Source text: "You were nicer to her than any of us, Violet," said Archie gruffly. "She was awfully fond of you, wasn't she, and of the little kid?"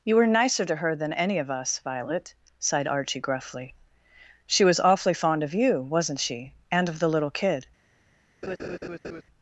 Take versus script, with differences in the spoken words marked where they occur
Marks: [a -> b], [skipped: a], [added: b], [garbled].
"You were nicer to her than any of us, Violet," [said -> sighed] Archie gruffly. "She was awfully fond of you, wasn't she, and of the little kid?"